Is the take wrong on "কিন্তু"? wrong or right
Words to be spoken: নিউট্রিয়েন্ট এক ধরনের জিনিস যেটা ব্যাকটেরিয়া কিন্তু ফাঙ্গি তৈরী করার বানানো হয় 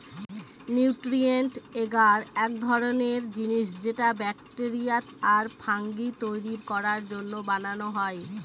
wrong